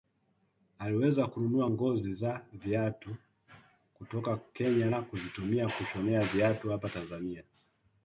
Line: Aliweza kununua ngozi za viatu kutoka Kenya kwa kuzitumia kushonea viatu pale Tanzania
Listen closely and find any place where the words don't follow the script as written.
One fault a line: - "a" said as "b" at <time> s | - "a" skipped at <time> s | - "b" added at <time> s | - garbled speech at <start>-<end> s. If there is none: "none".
- "kwa" said as "na" at 4.9 s
- "pale" said as "hapa" at 6.7 s